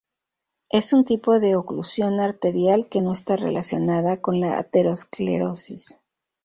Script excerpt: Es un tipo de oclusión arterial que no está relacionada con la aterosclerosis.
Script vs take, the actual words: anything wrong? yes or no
no